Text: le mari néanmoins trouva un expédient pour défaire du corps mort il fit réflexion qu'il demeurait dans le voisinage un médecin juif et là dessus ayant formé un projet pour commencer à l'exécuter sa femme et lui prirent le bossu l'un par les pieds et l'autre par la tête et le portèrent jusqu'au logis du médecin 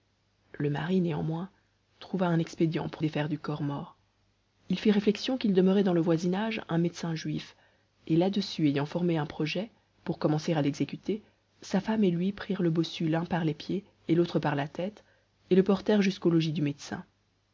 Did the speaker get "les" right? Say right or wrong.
right